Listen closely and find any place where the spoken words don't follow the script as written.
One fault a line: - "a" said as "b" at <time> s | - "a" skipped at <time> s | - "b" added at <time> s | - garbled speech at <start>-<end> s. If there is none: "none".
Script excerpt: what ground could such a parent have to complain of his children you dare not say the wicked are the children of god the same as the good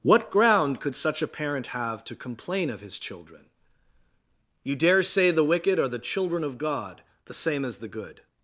- "not" skipped at 5.0 s